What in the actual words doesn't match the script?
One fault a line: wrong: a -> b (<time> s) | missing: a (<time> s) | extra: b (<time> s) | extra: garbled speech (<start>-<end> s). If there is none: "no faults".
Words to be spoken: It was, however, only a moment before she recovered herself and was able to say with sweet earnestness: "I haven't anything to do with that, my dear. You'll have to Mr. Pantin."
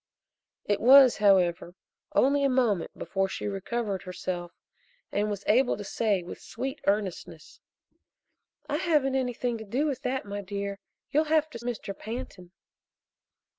no faults